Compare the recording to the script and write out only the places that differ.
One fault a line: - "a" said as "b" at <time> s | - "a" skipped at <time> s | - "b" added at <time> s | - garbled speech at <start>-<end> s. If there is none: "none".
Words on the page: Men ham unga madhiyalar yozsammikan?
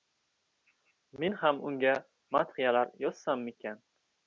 none